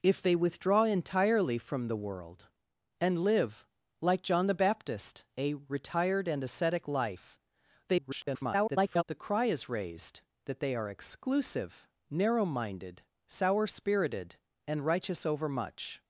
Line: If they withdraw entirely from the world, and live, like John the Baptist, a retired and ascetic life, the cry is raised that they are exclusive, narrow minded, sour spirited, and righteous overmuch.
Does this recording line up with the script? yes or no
no